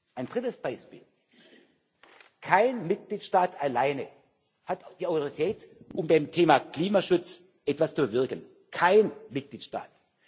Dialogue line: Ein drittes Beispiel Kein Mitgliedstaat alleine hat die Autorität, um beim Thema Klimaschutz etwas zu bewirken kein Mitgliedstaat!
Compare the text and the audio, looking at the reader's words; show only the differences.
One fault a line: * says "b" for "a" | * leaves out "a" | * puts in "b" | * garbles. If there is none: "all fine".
all fine